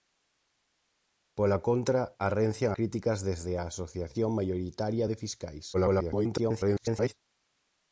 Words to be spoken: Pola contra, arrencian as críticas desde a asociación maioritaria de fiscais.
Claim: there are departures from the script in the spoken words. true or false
true